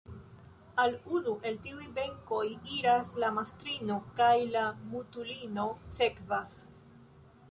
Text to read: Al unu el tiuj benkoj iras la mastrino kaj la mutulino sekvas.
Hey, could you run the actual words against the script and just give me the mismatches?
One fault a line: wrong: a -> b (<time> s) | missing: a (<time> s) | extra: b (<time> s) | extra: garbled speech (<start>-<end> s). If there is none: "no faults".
no faults